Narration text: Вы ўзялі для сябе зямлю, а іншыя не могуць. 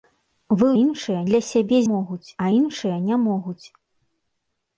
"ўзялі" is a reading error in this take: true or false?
true